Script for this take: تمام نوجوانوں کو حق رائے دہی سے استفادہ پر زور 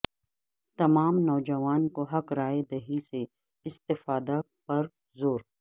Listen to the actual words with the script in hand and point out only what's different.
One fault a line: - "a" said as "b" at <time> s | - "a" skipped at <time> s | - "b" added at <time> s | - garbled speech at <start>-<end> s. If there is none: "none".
none